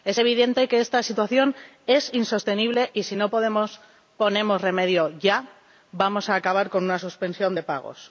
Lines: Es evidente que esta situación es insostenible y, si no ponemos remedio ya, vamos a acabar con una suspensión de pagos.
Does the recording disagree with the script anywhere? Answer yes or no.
no